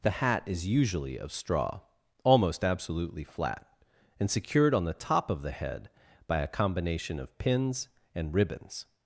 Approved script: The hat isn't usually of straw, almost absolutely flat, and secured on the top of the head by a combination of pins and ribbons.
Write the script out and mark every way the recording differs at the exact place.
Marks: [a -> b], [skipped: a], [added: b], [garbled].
The hat [isn't -> is] usually of straw, almost absolutely flat, and secured on the top of the head by a combination of pins and ribbons.